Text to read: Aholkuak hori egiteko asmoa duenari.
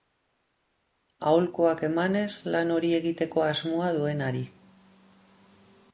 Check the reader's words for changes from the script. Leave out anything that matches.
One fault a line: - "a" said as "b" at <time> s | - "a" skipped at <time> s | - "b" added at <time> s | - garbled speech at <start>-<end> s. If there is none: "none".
- "emanez lan" added at 1.9 s